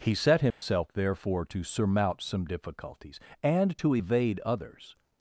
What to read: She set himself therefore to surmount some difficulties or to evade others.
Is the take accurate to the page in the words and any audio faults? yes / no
no